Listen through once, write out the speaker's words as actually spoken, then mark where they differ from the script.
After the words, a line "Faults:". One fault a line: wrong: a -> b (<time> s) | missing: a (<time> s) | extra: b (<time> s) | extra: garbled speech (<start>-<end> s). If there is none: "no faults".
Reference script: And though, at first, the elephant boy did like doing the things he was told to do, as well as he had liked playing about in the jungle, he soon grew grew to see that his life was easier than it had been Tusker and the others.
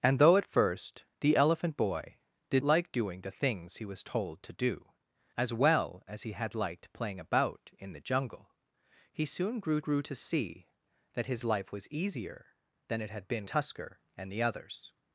And though, at first, the elephant boy did like doing the things he was told to do, as well as he had liked playing about in the jungle, he soon grew grew to see that his life was easier than it had been Tusker and the others.
Faults:
no faults